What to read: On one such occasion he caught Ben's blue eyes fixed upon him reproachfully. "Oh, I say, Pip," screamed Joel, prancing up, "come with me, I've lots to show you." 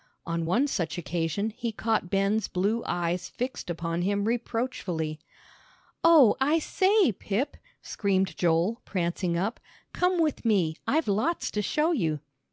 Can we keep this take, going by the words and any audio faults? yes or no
yes